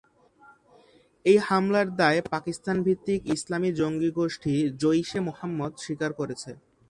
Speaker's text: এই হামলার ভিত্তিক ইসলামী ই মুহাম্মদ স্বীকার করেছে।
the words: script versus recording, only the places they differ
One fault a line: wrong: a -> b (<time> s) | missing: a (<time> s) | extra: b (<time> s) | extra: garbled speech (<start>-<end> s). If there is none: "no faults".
extra: দায় পাকিস্তান (1.9 s)
extra: জঙ্গি গোষ্ঠী জইশ (3.8 s)